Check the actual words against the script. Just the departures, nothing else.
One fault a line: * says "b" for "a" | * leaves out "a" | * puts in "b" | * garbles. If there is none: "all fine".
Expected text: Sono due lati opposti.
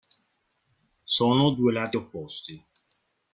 all fine